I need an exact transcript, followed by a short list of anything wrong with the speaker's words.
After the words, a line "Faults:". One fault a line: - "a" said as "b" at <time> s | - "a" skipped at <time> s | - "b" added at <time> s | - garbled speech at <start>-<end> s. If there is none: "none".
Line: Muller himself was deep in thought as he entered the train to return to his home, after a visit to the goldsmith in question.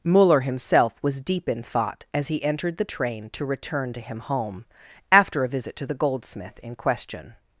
Muller himself was deep in thought as he entered the train to return to him home, after a visit to the goldsmith in question.
Faults:
- "his" said as "him" at 4.0 s